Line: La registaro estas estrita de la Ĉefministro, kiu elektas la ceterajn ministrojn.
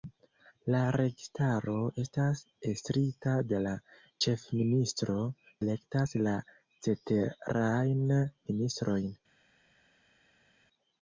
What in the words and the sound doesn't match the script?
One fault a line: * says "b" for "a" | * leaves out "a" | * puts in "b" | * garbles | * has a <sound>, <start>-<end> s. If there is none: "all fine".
* leaves out "kiu"